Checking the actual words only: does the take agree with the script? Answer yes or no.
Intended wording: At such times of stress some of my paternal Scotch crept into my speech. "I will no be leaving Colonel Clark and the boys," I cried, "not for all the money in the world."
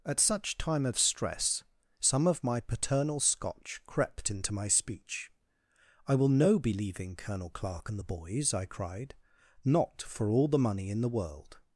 no